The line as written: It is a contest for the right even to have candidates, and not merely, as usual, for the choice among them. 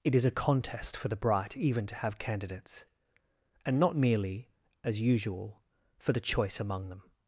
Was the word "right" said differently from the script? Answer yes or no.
yes